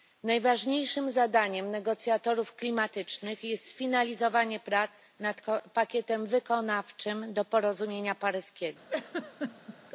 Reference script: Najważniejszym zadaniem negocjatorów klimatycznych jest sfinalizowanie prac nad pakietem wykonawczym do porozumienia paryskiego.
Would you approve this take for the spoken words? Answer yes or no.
yes